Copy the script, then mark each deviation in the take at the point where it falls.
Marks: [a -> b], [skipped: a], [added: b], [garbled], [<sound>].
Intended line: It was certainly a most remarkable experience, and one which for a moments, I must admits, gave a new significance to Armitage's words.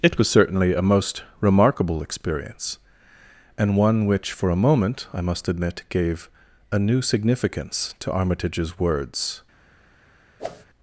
It was certainly a most remarkable experience, and one which for a [moments, -> moment] I must [admits, -> admit] gave a new significance to Armitage's words. [whoosh]